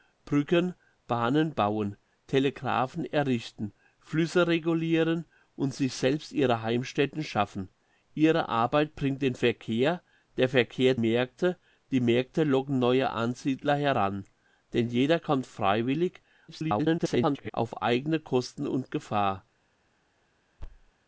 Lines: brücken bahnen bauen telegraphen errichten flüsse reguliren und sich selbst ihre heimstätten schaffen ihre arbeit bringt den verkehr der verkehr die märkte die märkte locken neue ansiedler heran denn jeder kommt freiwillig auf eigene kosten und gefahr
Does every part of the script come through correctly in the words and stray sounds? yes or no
no